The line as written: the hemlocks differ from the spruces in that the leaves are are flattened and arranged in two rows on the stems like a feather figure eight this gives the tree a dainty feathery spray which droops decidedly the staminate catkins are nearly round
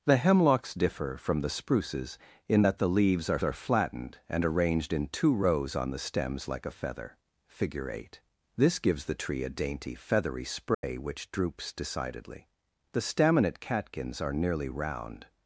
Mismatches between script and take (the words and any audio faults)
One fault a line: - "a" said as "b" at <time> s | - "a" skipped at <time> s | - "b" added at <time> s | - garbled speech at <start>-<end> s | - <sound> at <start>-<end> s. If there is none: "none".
- dropout at 10.7-10.8 s